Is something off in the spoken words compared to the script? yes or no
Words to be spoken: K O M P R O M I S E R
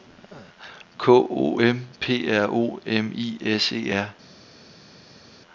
no